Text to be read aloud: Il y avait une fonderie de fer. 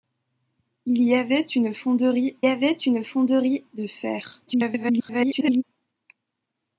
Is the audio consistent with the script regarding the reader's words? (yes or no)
no